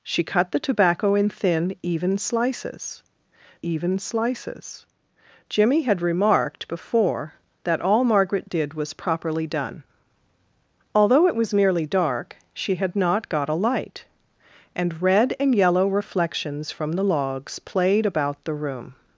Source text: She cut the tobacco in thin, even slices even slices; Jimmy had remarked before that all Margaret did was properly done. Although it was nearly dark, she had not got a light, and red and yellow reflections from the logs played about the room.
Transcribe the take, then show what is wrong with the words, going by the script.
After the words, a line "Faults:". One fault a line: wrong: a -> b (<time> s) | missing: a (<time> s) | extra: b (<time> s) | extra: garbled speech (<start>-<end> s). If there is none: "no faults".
She cut the tobacco in thin, even slices even slices; Jimmy had remarked before that all Margaret did was properly done. Although it was nearly dark, she had not got a light, and red and yellow reflections from the logs played about the room.
Faults:
no faults